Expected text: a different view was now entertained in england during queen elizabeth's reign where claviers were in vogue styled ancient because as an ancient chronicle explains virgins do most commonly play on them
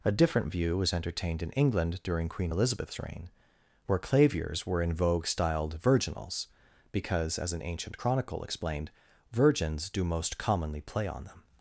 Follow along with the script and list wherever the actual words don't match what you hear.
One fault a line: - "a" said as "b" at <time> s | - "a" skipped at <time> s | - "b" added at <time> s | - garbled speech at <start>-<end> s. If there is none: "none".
- "now" skipped at 0.9 s
- "ancient" said as "virginals" at 5.8 s
- "explains" said as "explained" at 8.4 s